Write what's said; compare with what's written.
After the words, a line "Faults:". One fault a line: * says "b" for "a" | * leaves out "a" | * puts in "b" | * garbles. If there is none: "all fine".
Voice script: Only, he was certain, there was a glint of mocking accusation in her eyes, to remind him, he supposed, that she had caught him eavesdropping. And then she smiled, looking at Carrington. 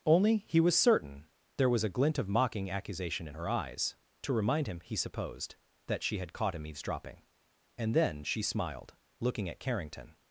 Only, he was certain, there was a glint of mocking accusation in her eyes, to remind him, he supposed, that she had caught him eavesdropping. And then she smiled, looking at Carrington.
Faults:
all fine